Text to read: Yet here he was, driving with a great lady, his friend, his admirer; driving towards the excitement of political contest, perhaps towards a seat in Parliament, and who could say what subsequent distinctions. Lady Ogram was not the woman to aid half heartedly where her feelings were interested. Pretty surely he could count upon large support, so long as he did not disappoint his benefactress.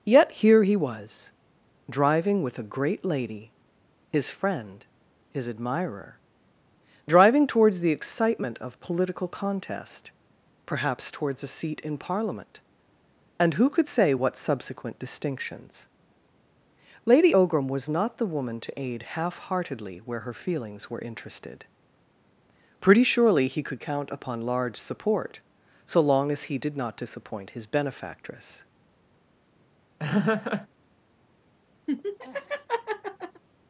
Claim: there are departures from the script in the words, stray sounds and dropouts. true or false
true